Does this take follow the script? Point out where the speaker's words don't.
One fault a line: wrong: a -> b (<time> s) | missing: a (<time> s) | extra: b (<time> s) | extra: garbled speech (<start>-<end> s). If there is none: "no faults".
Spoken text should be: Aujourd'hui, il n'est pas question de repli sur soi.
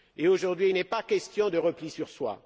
no faults